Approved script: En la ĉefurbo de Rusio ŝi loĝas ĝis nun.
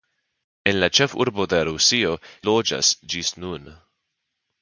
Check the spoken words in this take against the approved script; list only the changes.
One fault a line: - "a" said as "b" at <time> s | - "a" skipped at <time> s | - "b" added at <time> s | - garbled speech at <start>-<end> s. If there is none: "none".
- "ŝi" skipped at 2.1 s